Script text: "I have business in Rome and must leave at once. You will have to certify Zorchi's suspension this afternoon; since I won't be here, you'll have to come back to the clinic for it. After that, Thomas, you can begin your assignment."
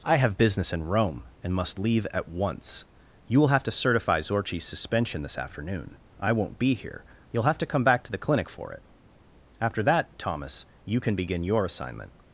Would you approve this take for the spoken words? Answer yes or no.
no